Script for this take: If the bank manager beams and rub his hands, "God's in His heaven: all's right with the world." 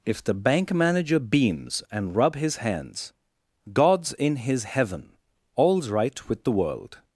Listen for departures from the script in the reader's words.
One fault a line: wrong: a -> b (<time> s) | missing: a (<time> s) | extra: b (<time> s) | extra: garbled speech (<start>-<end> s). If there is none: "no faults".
no faults